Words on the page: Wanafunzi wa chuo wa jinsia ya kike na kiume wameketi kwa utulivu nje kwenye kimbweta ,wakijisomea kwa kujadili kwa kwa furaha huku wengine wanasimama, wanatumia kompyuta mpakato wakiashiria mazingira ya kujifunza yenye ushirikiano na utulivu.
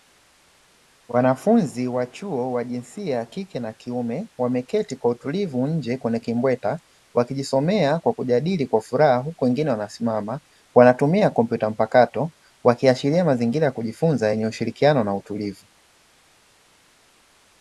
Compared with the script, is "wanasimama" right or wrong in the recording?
right